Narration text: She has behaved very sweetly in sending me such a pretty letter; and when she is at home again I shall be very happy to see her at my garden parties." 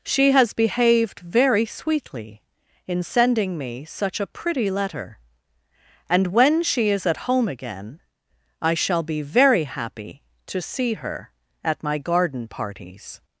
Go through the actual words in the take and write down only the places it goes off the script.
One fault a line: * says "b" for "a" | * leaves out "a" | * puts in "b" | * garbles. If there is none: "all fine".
all fine